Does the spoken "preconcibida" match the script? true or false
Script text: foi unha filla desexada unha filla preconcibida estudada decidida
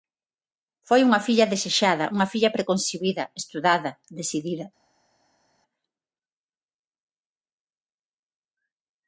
true